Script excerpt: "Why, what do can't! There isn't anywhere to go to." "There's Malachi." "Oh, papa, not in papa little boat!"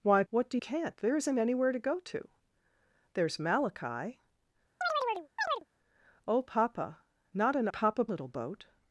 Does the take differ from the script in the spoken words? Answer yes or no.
no